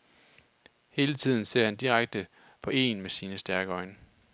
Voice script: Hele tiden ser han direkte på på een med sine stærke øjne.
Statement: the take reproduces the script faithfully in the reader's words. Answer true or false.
false